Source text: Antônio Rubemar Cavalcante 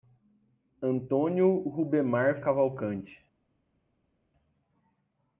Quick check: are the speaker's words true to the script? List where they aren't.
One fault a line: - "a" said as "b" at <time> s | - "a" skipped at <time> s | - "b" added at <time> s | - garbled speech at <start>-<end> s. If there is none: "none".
none